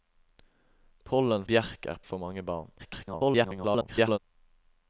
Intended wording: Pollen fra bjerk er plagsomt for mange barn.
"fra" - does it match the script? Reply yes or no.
no